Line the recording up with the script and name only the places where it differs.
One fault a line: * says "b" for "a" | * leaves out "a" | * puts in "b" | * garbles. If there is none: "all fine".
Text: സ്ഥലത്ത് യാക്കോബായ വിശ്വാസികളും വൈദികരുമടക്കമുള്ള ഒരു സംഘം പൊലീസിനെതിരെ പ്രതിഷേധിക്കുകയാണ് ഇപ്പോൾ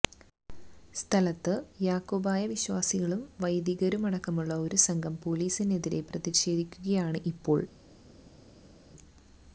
all fine